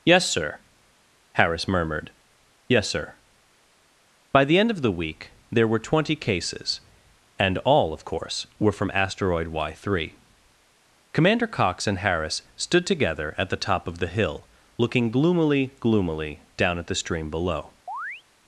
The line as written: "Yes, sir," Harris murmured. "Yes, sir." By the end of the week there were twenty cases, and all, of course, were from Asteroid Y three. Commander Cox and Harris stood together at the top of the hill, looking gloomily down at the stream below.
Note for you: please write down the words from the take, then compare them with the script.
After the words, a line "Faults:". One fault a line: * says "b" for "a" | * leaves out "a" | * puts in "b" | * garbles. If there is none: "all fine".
"Yes, sir," Harris murmured. "Yes, sir." By the end of the week there were twenty cases, and all, of course, were from Asteroid Y three. Commander Cox and Harris stood together at the top of the hill, looking gloomily gloomily down at the stream below.
Faults:
* puts in "gloomily"